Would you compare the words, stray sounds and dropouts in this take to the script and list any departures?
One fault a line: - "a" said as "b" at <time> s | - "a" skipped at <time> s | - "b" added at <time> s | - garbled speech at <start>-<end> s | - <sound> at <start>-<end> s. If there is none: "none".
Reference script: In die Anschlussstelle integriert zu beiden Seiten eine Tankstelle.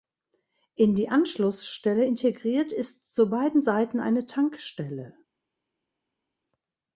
- "ist" added at 2.7 s